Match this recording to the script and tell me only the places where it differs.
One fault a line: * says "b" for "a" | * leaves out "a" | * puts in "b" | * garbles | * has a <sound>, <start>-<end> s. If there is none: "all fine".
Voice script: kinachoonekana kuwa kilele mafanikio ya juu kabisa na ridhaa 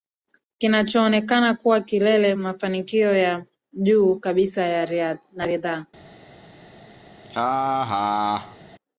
* has a laugh, 7.2-8.6 s